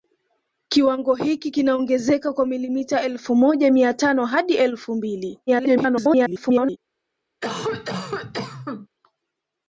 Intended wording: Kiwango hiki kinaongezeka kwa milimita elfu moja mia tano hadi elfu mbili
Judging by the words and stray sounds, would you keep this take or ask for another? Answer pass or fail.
fail